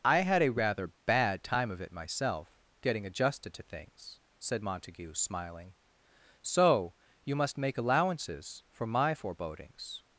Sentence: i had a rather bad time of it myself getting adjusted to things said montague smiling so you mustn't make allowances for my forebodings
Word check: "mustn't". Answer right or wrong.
wrong